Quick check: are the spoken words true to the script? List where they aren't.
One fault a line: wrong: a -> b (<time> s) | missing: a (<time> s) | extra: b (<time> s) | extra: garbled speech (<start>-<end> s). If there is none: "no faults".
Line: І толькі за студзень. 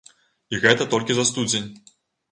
extra: гэта (0.6 s)